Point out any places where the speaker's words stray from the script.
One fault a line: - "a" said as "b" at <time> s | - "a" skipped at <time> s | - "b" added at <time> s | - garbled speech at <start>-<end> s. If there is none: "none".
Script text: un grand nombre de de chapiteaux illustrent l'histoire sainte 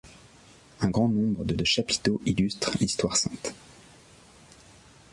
none